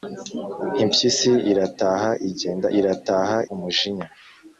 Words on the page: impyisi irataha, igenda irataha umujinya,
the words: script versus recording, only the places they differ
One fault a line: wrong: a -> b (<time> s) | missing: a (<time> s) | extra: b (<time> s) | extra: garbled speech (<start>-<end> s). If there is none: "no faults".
no faults